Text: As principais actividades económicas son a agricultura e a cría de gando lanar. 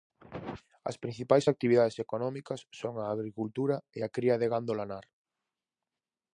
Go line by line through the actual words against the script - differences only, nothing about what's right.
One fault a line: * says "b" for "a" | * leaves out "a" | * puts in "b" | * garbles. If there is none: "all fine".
all fine